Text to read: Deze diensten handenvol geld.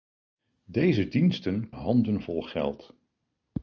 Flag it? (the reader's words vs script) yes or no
no